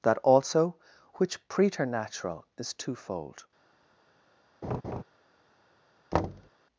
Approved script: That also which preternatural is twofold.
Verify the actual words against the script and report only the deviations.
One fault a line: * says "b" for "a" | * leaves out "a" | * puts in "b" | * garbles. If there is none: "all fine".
all fine